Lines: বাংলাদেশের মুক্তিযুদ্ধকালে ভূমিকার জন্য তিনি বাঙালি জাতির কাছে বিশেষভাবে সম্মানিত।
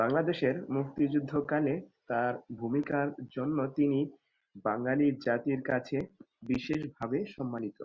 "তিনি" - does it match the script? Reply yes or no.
yes